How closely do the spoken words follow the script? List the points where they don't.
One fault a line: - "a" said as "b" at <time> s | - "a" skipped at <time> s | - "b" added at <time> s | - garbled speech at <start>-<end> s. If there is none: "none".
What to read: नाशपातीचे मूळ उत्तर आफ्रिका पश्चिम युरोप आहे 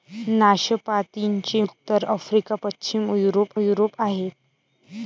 - "मूळ" skipped at 1.6 s
- "युरोप" added at 3.6 s